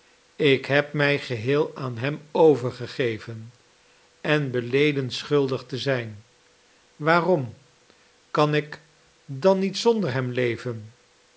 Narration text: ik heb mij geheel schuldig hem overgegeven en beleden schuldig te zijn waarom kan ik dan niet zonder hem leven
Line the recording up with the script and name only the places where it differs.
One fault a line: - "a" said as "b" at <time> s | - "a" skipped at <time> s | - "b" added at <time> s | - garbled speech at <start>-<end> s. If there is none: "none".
- "schuldig" said as "aan" at 1.8 s